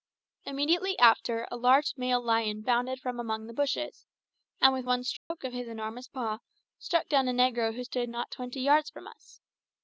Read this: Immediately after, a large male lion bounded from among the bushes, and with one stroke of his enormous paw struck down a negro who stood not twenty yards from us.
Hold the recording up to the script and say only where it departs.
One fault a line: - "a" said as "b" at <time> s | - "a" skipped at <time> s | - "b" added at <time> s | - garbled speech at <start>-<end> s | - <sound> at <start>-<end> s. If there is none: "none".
- dropout at 5.2-5.3 s